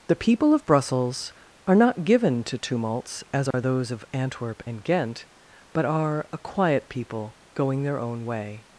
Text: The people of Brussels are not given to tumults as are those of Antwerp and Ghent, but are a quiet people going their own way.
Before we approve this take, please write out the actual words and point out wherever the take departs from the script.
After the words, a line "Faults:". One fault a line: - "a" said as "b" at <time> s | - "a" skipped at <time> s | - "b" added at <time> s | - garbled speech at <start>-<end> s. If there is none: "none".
The people of Brussels are not given to tumults as are those of Antwerp and Ghent, but are a quiet people going their own way.
Faults:
none